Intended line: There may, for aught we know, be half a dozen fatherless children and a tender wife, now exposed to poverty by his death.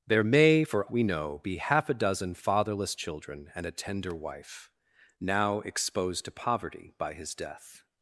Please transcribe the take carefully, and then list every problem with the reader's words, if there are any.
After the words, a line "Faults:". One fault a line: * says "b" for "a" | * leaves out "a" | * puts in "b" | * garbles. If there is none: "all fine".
There may, for we know, be half a dozen fatherless children and a tender wife, now exposed to poverty by his death.
Faults:
* leaves out "aught"